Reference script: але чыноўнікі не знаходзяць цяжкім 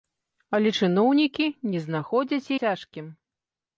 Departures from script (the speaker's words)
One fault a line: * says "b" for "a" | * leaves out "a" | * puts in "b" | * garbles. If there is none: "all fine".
all fine